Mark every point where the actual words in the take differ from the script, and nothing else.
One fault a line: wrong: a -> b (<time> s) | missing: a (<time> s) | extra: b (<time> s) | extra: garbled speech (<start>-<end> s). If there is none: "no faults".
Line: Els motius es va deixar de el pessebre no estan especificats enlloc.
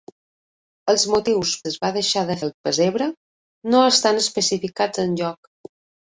no faults